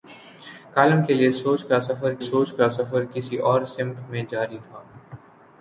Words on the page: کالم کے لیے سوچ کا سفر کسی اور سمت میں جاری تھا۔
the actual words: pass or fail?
fail